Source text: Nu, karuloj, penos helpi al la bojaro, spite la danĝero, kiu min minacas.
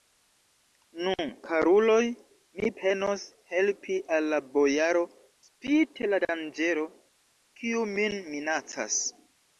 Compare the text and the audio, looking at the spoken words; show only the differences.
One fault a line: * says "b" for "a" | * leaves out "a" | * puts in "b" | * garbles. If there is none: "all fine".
* puts in "mi"